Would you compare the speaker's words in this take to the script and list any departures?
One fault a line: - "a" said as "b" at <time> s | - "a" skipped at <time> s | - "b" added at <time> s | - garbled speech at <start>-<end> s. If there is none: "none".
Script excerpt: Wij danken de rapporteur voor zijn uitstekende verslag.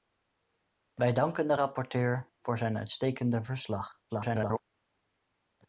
- garbled speech at 4.1-4.6 s